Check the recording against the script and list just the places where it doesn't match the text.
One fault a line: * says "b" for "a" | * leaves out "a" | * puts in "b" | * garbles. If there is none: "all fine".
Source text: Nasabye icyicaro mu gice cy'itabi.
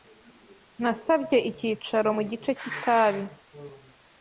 all fine